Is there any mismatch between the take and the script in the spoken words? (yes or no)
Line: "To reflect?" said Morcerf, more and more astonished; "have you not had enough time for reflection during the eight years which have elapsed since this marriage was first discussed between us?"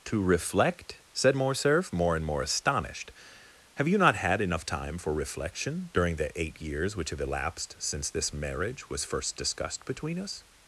no